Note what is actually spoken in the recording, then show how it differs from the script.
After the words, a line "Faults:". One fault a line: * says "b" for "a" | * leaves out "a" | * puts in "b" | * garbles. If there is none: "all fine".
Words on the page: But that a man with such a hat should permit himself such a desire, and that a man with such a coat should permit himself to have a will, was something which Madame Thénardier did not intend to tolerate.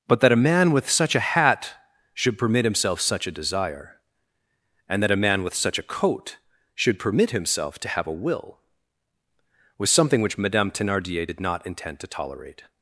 But that a man with such a hat should permit himself such a desire, and that a man with such a coat should permit himself to have a will, was something which Madame Thénardier did not intend to tolerate.
Faults:
all fine